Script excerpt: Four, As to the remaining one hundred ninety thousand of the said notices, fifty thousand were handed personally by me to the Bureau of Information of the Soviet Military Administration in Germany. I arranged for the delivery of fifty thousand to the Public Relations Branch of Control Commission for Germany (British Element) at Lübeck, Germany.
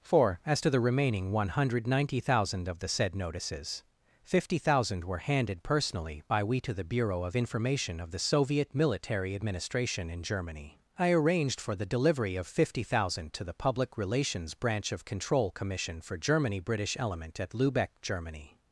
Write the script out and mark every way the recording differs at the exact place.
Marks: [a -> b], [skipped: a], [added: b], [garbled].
Four, As to the remaining one hundred ninety thousand of the said notices, fifty thousand were handed personally by [me -> we] to the Bureau of Information of the Soviet Military Administration in Germany. I arranged for the delivery of fifty thousand to the Public Relations Branch of Control Commission for Germany (British Element) at Lübeck, Germany.